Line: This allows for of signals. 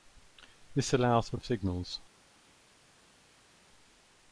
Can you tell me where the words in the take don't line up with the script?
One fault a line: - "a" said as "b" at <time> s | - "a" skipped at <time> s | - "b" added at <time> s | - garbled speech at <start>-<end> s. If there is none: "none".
none